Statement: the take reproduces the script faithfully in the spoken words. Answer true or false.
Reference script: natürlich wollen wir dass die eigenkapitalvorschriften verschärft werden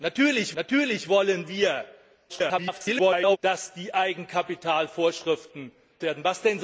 false